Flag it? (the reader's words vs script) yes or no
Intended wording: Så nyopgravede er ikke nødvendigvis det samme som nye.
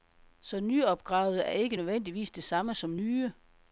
no